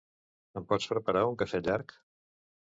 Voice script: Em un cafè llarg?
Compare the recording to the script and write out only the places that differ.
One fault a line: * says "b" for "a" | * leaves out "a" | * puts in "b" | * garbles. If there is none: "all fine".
* puts in "pots preparar"